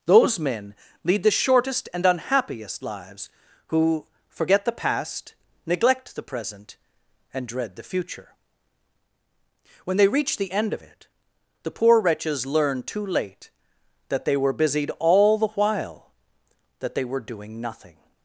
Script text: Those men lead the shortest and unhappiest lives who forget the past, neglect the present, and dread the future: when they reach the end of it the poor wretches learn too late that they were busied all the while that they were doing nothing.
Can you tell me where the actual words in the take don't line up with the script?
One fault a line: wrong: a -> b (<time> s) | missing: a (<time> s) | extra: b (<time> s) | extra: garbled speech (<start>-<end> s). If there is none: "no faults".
no faults